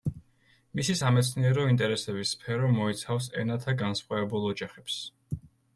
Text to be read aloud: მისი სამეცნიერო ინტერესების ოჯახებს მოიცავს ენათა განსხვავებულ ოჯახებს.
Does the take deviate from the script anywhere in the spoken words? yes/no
yes